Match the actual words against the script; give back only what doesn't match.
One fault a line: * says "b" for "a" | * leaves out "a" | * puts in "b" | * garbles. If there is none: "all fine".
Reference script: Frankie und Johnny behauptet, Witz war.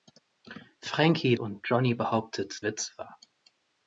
all fine